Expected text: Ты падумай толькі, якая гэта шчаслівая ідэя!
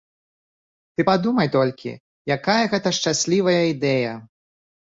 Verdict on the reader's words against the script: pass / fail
pass